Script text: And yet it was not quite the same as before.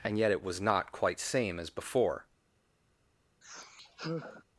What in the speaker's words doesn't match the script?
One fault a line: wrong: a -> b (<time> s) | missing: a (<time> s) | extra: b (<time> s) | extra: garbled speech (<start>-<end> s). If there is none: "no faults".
missing: the (1.2 s)